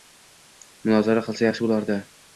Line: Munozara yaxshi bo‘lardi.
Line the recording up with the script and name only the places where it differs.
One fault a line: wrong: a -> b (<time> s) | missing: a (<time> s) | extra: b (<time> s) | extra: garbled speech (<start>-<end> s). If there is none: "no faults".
extra: qilsa (1.3 s)